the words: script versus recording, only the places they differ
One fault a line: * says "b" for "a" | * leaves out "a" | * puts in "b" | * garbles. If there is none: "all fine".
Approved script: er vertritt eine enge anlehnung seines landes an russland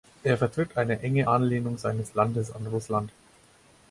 all fine